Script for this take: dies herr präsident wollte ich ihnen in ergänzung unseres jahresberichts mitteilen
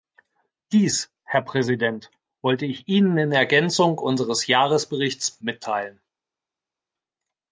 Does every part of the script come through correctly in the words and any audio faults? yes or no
yes